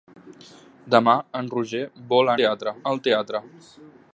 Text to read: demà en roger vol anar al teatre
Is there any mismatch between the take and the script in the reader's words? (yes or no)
yes